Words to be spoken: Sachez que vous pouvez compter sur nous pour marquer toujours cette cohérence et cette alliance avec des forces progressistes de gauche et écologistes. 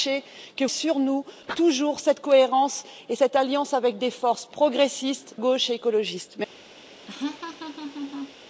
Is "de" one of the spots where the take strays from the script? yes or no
yes